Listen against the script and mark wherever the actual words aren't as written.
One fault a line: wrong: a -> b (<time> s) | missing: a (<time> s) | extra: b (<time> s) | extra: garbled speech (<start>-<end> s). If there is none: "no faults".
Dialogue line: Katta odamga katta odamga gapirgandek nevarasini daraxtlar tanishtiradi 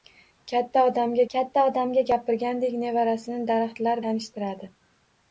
no faults